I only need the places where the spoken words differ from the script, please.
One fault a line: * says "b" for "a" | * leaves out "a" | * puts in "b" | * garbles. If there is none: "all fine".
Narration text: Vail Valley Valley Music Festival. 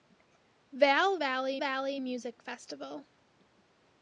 all fine